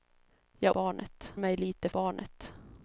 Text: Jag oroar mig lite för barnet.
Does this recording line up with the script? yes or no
no